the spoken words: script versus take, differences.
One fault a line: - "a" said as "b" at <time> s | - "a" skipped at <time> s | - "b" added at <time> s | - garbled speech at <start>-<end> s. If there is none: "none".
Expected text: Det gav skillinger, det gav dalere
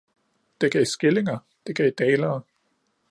none